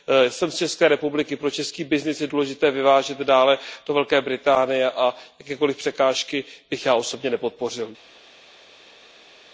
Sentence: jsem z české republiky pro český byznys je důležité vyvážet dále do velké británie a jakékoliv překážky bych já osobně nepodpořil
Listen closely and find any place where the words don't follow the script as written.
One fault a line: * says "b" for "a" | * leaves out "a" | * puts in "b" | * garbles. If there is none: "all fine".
all fine